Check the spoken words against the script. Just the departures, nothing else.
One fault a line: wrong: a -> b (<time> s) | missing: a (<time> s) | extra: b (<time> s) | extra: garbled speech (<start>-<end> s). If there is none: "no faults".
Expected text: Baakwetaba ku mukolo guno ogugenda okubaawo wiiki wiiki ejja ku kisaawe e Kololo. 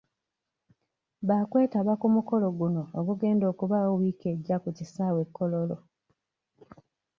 missing: wiiki (4.2 s)